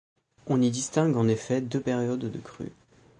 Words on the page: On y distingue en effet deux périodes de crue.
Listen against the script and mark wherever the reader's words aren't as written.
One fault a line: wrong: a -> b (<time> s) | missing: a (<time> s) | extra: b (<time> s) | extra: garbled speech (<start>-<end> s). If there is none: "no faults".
no faults